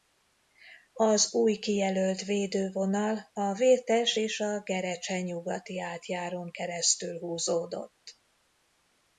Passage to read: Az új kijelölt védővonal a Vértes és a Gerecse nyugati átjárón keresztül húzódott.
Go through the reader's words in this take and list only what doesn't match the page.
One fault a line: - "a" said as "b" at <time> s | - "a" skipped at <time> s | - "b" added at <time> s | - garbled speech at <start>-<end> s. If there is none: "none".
none